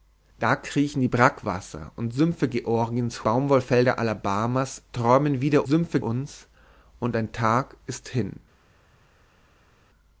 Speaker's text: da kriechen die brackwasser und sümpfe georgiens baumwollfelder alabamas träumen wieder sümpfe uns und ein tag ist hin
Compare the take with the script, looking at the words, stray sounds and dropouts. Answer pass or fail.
pass